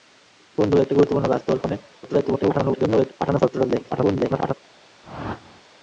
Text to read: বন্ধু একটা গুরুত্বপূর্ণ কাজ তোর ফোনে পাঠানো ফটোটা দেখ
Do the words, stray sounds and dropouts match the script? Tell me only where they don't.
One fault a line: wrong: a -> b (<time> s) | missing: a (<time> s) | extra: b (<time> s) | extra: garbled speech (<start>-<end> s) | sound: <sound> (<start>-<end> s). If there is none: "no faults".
extra: garbled speech (2.0-3.1 s)
extra: garbled speech (3.9-4.5 s)
sound: whoosh (5.0-5.6 s)